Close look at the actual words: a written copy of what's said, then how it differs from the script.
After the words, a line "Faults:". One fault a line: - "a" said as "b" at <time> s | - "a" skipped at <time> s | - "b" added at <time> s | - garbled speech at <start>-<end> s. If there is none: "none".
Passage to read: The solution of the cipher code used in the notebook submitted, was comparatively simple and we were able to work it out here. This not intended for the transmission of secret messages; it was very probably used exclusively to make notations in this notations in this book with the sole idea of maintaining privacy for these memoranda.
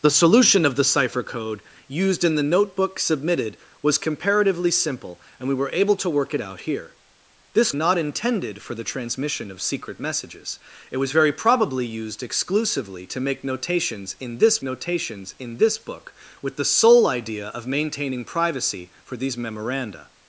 The solution of the cipher code used in the notebook submitted, was comparatively simple and we were able to work it out here. This not intended for the transmission of secret messages; it was very probably used exclusively to make notations in this notations in this book with the sole idea of maintaining privacy for these memoranda.
Faults:
none